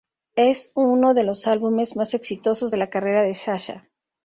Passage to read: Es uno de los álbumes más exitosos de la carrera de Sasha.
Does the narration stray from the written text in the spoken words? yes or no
no